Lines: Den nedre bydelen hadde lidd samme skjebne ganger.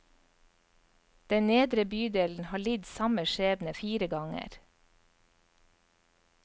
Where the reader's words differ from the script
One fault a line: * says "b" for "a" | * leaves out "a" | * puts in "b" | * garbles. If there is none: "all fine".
* says "har" for "hadde"
* puts in "fire"